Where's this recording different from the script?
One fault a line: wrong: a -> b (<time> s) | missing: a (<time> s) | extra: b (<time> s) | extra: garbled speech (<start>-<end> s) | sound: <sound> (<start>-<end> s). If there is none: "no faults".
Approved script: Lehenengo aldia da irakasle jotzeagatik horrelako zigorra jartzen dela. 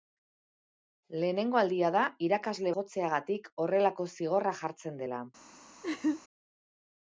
sound: laugh (5.8-6.2 s)